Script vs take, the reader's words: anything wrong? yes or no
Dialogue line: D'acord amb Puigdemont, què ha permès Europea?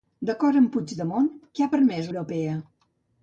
no